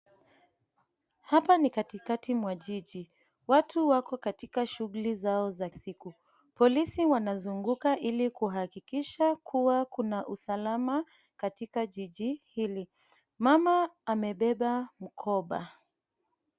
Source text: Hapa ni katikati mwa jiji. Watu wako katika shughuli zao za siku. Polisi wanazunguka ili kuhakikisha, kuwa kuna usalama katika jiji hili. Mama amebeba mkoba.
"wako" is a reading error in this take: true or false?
false